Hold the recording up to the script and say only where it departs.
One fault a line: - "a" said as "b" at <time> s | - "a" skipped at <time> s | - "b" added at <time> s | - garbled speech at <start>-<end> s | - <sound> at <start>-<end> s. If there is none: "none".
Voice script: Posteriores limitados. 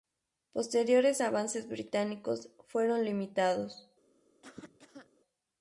- "avances británicos fueron" added at 1.2 s
- cough at 4.4-5.1 s